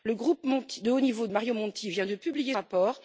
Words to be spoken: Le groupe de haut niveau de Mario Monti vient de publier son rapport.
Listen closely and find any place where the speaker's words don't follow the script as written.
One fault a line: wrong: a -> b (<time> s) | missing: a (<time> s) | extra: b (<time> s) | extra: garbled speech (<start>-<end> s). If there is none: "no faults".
missing: de (1.3 s)
missing: son (2.6 s)